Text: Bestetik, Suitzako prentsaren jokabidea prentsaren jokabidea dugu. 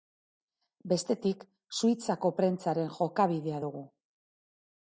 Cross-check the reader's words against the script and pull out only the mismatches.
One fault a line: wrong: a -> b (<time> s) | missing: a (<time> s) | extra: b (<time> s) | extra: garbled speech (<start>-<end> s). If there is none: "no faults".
missing: prentsaren jokabidea (3.6 s)